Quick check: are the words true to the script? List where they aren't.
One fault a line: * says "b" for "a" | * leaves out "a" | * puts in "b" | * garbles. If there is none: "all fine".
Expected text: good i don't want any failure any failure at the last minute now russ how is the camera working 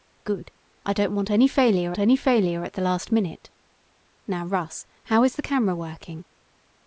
all fine